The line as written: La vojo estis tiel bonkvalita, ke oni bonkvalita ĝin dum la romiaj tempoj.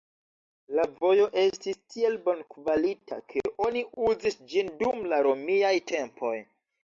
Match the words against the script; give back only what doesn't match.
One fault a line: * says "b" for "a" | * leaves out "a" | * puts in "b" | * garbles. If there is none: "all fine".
* says "uzis" for "bonkvalita"